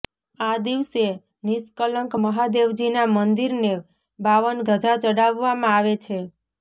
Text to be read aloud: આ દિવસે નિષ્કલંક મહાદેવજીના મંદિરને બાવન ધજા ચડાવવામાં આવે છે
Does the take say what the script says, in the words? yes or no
yes